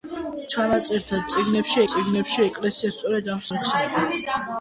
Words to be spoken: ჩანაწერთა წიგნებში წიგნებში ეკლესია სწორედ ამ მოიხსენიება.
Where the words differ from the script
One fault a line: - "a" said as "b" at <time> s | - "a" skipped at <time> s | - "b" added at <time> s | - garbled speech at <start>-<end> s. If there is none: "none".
none